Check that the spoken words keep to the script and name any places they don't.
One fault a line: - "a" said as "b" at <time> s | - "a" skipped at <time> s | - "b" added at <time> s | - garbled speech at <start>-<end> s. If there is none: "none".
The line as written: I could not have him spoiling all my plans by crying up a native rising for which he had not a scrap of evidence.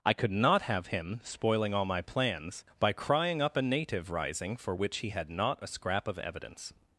none